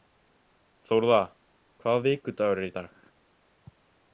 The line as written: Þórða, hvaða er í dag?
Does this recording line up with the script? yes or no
no